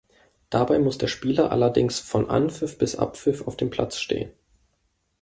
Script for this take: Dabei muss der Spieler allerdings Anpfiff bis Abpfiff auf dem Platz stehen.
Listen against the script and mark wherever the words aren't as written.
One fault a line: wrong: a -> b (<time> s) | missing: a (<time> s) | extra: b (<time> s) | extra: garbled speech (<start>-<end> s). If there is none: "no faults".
extra: von (2.0 s)